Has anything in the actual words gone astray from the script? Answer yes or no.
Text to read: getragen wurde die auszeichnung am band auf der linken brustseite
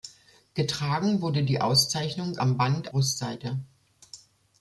yes